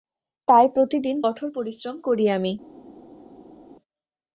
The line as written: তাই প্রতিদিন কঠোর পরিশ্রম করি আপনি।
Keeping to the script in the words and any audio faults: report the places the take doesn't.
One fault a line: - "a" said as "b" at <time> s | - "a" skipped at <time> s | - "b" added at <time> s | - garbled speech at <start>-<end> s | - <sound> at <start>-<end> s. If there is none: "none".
- "আপনি" said as "আমি" at 2.3 s